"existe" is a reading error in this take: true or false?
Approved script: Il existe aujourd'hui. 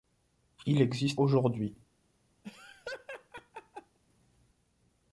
false